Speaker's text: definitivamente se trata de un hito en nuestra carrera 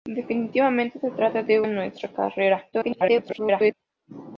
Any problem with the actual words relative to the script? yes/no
yes